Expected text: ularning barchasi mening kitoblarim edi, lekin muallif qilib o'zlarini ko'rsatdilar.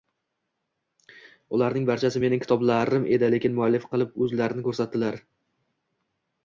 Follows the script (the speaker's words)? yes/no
yes